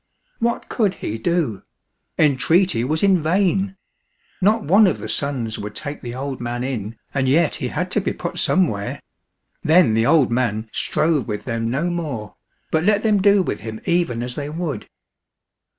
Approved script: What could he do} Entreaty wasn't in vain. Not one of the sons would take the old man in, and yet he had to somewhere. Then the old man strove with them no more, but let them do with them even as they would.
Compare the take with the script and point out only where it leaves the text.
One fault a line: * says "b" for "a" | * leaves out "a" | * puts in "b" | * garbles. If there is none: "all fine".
* says "was" for "wasn't"
* puts in "be put"
* says "him" for "them"